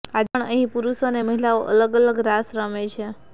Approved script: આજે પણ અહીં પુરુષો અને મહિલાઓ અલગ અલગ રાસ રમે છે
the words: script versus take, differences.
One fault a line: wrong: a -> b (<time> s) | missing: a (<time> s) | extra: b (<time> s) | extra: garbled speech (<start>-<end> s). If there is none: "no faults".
no faults